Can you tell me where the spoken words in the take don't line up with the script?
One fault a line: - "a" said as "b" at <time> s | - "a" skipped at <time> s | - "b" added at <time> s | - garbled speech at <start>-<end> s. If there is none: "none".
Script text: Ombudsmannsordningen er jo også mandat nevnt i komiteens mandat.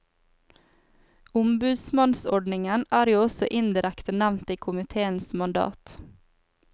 - "mandat" said as "indirekte" at 3.6 s